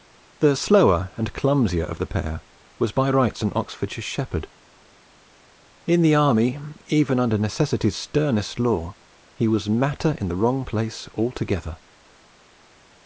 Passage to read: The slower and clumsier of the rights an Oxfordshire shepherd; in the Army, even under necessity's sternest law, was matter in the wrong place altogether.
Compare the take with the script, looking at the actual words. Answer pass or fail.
fail